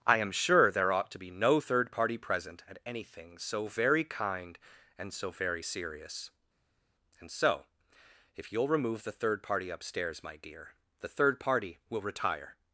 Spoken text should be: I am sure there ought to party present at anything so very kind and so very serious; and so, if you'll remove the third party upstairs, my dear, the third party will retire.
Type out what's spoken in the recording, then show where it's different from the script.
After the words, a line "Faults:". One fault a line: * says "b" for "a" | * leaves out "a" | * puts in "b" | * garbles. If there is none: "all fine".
I am sure there ought to be no third party present at anything so very kind and so very serious; and so, if you'll remove the third party upstairs, my dear, the third party will retire.
Faults:
* puts in "be no third"